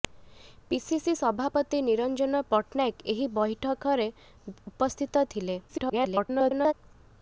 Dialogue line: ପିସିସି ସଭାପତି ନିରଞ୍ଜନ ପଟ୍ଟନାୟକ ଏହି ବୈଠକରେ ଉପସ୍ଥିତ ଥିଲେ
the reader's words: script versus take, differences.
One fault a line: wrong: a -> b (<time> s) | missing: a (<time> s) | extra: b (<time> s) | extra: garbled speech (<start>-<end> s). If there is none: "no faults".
extra: garbled speech (5.7-6.7 s)